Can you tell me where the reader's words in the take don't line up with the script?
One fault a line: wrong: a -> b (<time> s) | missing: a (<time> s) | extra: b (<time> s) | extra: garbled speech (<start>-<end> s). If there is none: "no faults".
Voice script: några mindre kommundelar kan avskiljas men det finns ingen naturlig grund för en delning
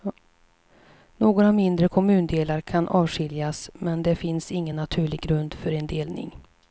no faults